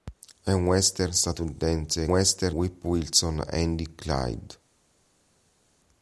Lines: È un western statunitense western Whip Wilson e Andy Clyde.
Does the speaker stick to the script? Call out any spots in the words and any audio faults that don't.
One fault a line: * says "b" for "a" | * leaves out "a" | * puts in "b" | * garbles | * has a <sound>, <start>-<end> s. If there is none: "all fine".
all fine